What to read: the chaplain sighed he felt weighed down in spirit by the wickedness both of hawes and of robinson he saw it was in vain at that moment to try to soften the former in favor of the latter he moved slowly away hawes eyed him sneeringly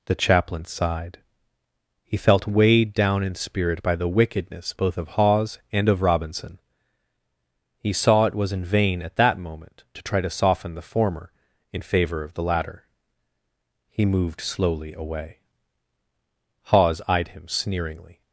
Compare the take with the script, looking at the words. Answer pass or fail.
pass